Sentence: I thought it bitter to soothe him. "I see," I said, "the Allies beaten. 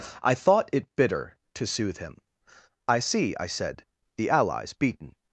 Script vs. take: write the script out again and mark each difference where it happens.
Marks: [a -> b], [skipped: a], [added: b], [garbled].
I thought it bitter to soothe him. "I see," I said, "the Allies beaten.